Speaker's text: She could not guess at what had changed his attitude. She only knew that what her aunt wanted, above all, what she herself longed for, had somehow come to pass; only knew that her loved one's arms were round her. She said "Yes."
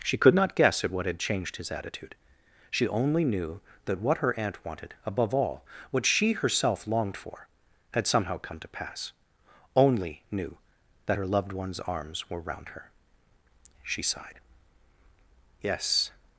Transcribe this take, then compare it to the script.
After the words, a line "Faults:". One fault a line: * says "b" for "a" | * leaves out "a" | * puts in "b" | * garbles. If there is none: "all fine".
She could not guess at what had changed his attitude. She only knew that what her aunt wanted, above all, what she herself longed for, had somehow come to pass; only knew that her loved one's arms were round her. She sighed "Yes."
Faults:
* says "sighed" for "said"